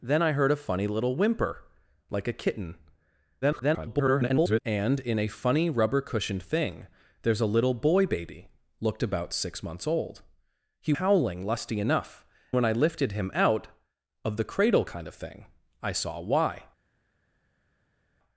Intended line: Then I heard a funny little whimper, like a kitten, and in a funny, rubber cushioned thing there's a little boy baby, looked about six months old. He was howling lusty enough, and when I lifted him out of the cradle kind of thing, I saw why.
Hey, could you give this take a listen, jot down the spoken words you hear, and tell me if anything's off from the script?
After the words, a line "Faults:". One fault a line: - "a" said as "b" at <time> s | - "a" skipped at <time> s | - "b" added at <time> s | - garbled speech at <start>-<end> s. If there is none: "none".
Then I heard a funny little whimper, like a kitten, [garbled] and in a funny, rubber cushioned thing there's a little boy baby, looked about six months old. He howling lusty enough, when I lifted him out of the cradle kind of thing, I saw why.
Faults:
- garbled speech at 3.4-4.6 s
- "was" skipped at 10.9 s
- "and" skipped at 12.3 s